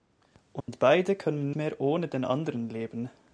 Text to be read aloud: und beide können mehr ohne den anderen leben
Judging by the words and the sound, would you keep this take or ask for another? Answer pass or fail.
fail